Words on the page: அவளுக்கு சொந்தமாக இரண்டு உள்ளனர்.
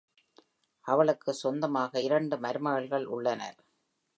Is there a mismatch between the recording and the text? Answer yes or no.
yes